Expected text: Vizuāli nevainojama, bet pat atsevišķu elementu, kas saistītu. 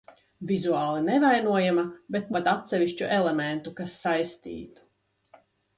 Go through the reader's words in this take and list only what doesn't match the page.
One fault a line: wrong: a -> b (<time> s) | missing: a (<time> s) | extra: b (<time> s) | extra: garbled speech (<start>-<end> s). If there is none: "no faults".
no faults